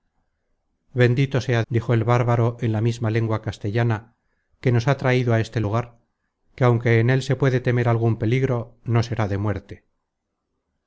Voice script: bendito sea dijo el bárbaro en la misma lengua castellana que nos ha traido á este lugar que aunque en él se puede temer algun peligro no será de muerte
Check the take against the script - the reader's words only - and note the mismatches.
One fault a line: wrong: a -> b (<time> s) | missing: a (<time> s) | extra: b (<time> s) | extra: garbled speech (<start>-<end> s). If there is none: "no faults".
no faults